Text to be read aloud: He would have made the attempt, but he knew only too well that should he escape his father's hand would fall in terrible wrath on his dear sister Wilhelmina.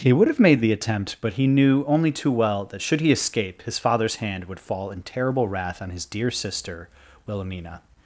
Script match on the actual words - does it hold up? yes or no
yes